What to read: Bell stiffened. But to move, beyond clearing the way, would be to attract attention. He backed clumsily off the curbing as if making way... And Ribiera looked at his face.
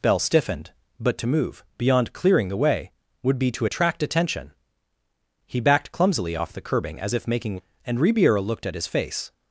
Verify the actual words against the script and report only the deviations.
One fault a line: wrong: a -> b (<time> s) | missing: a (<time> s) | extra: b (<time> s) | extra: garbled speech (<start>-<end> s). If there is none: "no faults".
missing: way (7.6 s)